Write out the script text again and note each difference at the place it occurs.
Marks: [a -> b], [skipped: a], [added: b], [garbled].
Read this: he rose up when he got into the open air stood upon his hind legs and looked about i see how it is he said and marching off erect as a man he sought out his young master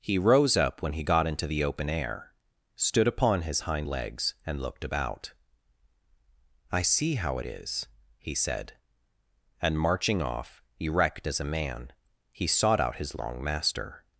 he rose up when he got into the open air stood upon his hind legs and looked about i see how it is he said and marching off erect as a man he sought out his [young -> long] master